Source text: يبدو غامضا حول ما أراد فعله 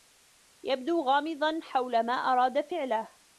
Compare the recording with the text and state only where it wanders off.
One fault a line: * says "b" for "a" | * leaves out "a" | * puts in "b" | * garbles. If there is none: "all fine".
all fine